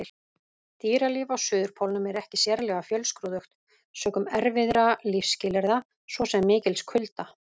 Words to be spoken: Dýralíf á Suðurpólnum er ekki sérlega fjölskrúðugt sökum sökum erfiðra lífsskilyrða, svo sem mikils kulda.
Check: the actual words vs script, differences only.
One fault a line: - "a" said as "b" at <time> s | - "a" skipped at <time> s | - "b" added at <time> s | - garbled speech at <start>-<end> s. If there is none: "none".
- "sökum" skipped at 4.3 s